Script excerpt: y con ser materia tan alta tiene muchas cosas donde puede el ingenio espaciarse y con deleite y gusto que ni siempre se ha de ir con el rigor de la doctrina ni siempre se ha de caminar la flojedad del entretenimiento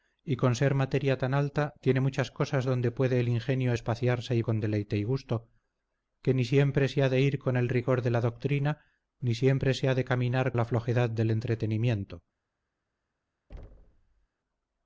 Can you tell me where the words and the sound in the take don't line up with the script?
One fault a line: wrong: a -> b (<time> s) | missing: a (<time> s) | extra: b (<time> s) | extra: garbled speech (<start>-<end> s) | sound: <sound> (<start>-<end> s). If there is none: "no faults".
sound: thud (13.5-14.3 s)